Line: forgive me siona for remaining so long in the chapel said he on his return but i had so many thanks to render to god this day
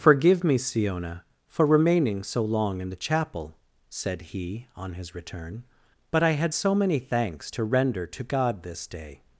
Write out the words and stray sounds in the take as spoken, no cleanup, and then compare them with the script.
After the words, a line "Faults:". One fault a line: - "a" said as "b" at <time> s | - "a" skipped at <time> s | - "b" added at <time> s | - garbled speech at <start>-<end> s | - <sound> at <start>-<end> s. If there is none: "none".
forgive me siona for remaining so long in the chapel said he on his return but i had so many thanks to render to god this day
Faults:
none